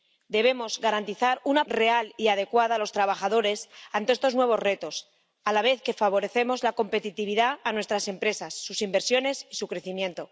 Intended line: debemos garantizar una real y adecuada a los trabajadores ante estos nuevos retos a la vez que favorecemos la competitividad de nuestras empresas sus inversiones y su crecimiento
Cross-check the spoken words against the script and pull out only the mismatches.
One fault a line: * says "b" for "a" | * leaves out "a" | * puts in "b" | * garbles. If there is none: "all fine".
all fine